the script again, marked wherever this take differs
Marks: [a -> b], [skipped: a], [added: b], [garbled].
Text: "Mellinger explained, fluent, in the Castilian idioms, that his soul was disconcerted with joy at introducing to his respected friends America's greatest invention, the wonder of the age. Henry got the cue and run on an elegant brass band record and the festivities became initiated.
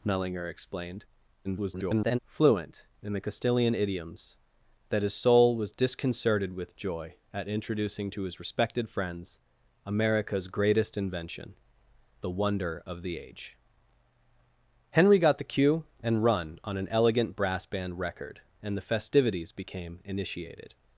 "Mellinger explained, [garbled] fluent, in the Castilian idioms, that his soul was disconcerted with joy at introducing to his respected friends America's greatest invention, the wonder of the age. Henry got the cue and run on an elegant brass band record and the festivities became initiated.